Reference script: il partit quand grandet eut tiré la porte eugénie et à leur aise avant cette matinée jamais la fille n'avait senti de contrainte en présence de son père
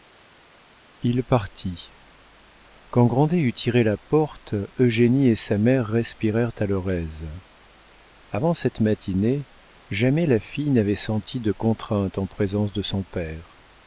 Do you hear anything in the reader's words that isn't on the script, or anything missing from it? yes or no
yes